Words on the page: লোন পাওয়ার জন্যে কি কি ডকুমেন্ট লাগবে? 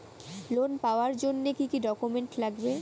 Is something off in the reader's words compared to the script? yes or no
no